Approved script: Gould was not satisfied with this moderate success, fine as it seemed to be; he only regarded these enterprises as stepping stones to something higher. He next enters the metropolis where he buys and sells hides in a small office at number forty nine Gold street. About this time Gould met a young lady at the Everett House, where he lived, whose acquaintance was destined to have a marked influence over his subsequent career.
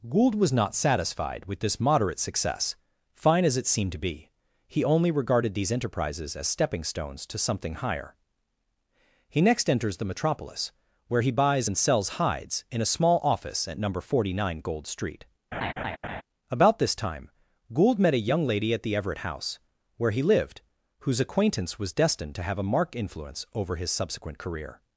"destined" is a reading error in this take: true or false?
false